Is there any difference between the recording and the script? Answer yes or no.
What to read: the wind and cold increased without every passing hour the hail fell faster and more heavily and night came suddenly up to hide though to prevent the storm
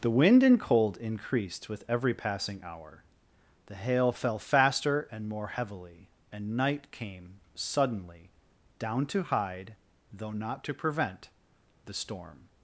yes